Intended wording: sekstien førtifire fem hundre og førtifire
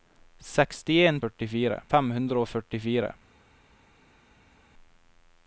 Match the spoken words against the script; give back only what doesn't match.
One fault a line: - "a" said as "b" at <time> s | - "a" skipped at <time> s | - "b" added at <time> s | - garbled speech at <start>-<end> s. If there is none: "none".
none